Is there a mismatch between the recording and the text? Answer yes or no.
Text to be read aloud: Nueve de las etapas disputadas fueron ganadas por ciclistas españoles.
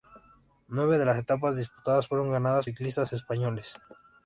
yes